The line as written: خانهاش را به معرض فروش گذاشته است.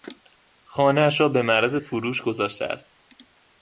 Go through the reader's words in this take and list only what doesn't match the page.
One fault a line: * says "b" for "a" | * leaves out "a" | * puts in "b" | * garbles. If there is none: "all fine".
all fine